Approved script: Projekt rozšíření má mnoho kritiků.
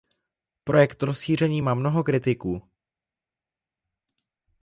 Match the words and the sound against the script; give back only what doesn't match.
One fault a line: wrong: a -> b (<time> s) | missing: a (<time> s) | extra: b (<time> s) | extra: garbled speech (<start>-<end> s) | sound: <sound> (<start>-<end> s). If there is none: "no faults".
no faults